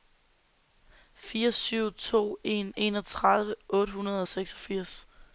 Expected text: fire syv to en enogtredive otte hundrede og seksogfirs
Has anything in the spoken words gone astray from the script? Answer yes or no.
no